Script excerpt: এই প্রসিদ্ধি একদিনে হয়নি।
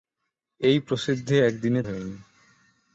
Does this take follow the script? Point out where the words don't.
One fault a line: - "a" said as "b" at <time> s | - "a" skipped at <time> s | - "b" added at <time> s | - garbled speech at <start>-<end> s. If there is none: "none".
none